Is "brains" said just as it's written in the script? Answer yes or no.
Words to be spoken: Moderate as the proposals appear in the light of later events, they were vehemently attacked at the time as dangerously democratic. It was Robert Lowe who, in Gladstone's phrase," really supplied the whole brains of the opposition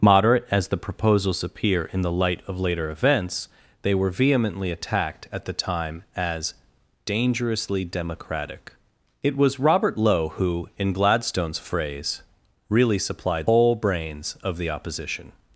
yes